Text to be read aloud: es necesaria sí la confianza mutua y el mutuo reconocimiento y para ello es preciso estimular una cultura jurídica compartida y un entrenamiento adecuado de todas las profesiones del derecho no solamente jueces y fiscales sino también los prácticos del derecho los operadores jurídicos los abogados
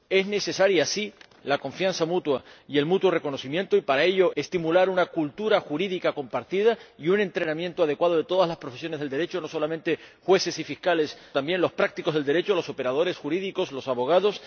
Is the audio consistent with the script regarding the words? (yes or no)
no